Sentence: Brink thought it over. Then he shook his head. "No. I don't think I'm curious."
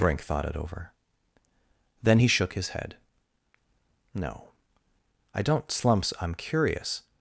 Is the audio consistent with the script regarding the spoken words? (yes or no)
no